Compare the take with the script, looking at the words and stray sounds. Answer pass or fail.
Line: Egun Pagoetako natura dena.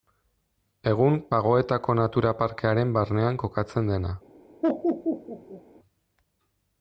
fail